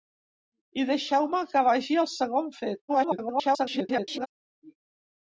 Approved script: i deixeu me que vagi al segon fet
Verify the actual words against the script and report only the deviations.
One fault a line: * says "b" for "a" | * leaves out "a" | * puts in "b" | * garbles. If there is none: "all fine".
* garbles